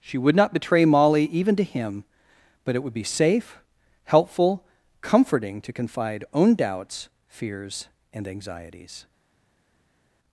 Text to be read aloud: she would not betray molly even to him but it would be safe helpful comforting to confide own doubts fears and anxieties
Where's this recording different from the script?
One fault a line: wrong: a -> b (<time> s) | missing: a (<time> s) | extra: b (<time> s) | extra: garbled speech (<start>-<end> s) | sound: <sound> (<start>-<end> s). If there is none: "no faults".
no faults